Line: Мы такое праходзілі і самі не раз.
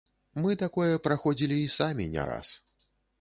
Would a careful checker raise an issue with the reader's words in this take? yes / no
no